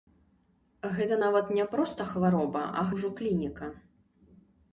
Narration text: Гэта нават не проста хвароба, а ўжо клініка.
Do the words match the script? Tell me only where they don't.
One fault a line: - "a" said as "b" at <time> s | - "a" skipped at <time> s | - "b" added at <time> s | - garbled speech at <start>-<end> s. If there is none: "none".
none